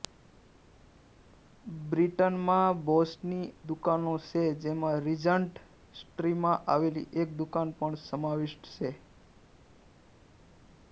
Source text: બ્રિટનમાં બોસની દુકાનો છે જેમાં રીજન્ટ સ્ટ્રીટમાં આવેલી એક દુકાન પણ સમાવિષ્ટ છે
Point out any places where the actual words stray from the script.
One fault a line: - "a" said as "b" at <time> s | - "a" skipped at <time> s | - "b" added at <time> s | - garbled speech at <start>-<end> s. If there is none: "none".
none